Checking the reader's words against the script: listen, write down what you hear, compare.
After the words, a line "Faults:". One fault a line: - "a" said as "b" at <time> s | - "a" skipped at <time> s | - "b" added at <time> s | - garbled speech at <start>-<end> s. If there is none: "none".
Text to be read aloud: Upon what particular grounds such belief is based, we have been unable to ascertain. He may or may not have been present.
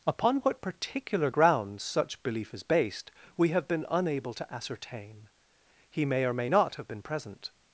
Upon what particular grounds such belief is based, we have been unable to ascertain. He may or may not have been present.
Faults:
none